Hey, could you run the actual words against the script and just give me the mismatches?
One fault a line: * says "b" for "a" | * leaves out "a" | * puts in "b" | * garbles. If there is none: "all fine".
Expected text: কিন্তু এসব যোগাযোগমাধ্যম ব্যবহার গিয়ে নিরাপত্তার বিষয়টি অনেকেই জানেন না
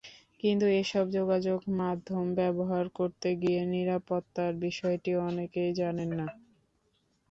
* puts in "করতে"